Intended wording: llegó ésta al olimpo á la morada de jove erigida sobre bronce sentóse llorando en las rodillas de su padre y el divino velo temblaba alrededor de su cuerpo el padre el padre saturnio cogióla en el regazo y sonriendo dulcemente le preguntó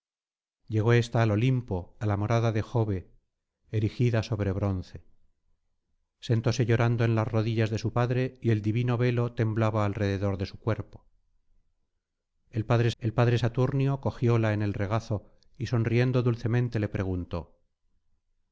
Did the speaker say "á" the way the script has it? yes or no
yes